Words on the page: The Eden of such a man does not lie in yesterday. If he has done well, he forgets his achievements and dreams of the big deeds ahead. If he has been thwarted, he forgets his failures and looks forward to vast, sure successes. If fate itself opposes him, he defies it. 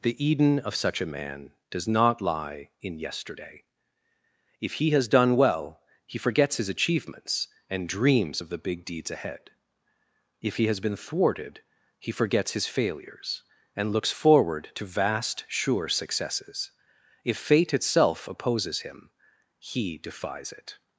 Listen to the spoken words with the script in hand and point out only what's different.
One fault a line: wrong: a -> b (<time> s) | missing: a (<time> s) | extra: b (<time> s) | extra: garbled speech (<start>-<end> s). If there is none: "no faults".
no faults